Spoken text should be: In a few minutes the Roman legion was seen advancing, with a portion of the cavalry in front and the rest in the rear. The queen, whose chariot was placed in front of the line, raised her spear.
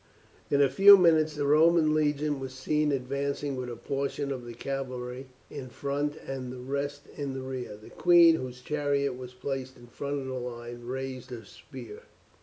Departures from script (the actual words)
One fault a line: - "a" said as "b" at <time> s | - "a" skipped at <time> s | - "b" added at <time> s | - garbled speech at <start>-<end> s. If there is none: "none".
none